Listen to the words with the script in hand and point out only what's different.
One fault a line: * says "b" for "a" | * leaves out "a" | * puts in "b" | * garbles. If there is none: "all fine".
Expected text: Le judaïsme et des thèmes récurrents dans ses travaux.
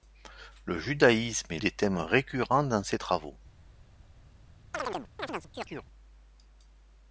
all fine